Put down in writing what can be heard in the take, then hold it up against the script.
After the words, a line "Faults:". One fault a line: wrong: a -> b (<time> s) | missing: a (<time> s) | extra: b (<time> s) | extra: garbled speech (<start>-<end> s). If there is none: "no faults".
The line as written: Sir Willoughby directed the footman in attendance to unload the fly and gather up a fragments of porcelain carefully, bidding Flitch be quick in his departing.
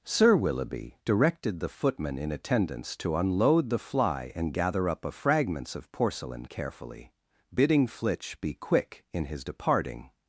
Sir Willoughby directed the footman in attendance to unload the fly and gather up a fragments of porcelain carefully, bidding Flitch be quick in his departing.
Faults:
no faults